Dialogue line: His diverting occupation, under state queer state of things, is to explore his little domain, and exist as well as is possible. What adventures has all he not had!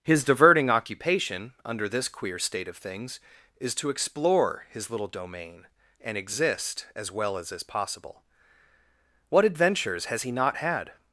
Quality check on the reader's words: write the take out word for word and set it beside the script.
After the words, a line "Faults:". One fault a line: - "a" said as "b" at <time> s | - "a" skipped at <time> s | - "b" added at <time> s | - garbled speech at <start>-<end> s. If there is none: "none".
His diverting occupation, under this queer state of things, is to explore his little domain, and exist as well as is possible. What adventures has he not had!
Faults:
- "state" said as "this" at 1.9 s
- "all" skipped at 10.2 s